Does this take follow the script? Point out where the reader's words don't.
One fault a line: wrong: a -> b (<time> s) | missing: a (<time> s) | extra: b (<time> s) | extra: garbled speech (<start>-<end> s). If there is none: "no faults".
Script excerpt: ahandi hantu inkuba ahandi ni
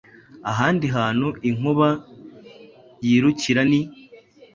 wrong: ahandi -> yirukira (3.1 s)